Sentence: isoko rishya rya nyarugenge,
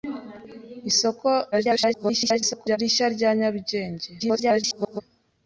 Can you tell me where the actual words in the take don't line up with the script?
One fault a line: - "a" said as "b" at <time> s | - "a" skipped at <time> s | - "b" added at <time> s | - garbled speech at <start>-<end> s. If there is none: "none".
- garbled speech at 1.5-2.8 s
- garbled speech at 4.2-5.0 s